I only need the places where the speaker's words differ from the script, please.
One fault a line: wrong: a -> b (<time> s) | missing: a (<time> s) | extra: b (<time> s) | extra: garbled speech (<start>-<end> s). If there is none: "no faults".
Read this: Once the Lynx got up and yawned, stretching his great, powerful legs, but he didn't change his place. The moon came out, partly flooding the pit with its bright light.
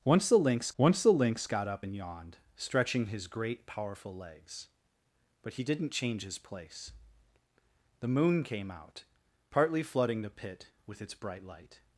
extra: once the Lynx (0.8 s)